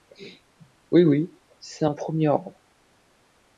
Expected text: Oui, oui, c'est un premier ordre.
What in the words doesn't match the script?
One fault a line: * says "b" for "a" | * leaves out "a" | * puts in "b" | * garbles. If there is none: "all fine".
all fine